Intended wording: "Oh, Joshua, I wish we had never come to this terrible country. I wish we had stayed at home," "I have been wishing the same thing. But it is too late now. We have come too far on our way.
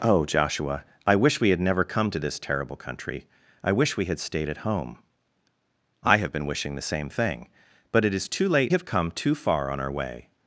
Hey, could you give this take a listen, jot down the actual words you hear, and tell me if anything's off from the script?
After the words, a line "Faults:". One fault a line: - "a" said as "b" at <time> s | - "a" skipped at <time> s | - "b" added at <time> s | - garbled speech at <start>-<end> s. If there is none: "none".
"Oh, Joshua, I wish we had never come to this terrible country. I wish we had stayed at home," "I have been wishing the same thing. But it is too late have come too far on our way.
Faults:
- "now We" skipped at 8.7 s